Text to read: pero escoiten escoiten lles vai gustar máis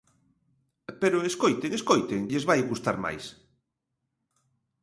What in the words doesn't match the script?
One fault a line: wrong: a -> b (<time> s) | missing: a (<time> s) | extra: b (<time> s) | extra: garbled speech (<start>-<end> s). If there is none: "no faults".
no faults